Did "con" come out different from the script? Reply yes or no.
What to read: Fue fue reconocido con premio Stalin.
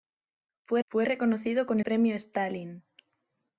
no